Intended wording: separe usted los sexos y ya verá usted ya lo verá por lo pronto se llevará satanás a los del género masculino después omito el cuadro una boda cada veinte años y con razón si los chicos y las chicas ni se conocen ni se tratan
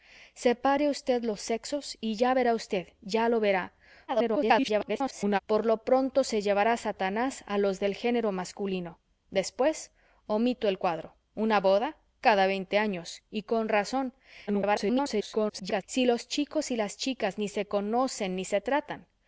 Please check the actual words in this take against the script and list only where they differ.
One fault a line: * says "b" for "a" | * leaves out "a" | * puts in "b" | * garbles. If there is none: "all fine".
* garbles
* garbles